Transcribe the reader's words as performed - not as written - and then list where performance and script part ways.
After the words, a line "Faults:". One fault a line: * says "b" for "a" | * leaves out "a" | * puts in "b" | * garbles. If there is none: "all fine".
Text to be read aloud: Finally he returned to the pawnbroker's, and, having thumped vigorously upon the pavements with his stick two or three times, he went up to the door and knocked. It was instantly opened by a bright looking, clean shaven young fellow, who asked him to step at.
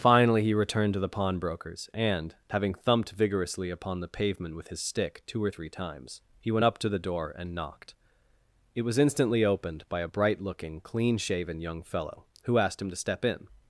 Finally he returned to the pawnbroker's, and, having thumped vigorously upon the pavement with his stick two or three times, he went up to the door and knocked. It was instantly opened by a bright looking, clean shaven young fellow, who asked him to step in.
Faults:
* says "pavement" for "pavements"
* says "in" for "at"